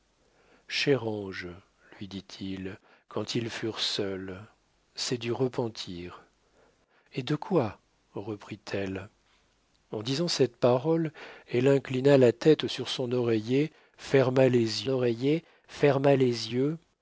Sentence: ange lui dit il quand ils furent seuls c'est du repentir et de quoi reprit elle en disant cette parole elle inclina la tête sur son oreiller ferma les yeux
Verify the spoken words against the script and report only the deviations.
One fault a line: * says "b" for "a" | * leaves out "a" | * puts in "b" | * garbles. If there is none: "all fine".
* puts in "oreiller ferma les"